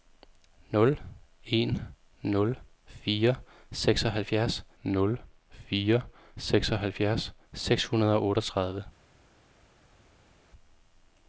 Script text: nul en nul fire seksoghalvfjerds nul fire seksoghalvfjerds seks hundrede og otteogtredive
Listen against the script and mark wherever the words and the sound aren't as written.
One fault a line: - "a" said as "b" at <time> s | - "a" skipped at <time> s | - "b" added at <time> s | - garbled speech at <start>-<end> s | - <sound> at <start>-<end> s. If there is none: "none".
none